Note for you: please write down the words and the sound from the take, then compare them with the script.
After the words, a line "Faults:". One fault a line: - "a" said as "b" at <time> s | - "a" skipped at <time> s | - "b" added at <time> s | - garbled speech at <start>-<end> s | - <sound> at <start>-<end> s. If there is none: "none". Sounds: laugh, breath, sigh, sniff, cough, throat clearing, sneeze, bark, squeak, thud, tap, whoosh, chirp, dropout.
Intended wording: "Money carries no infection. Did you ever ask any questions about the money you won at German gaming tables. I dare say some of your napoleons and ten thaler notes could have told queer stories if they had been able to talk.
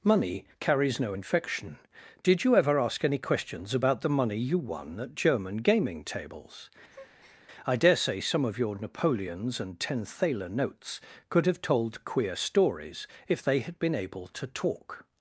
"Money carries no infection. Did you ever ask any questions about the money you won at German gaming tables. I dare say some of your napoleons and ten thaler notes could have told queer stories if they had been able to talk.
Faults:
- breath at 6.9-7.4 s